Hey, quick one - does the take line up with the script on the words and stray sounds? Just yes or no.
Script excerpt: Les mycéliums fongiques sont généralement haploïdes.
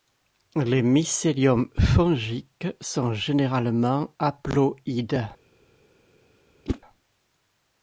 no